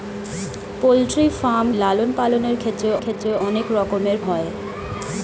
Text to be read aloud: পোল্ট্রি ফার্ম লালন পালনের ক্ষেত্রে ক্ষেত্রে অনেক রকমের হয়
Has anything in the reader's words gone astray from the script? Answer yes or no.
no